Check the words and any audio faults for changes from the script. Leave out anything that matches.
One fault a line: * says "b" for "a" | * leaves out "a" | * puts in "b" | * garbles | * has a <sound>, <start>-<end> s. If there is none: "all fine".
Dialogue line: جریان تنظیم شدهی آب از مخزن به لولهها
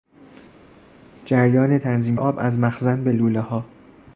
* leaves out "شدهی"